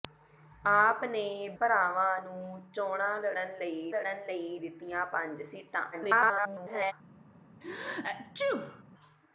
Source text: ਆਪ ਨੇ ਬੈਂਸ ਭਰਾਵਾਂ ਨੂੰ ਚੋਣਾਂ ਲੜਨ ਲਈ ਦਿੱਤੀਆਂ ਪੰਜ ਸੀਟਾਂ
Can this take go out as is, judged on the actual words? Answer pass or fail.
fail